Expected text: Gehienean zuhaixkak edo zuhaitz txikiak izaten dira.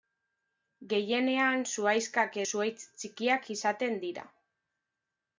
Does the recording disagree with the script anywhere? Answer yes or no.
yes